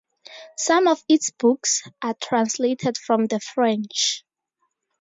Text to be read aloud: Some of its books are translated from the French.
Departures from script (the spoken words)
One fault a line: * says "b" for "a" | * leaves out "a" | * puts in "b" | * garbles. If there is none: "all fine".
all fine